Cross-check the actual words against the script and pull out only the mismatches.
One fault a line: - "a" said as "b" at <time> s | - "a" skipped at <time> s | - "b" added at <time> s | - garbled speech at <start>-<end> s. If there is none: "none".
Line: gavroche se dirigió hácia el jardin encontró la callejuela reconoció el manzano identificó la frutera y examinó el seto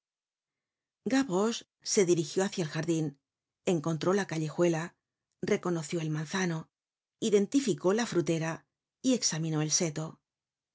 none